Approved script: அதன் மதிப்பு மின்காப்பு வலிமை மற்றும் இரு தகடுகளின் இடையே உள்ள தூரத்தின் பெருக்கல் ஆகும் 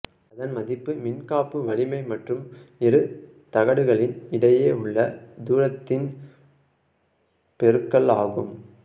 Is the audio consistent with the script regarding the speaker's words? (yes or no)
yes